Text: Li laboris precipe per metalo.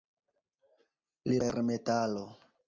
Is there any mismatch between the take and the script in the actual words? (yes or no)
yes